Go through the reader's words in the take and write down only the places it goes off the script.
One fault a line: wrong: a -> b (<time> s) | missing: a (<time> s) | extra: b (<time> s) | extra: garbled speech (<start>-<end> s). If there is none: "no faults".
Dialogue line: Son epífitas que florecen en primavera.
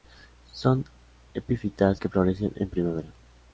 no faults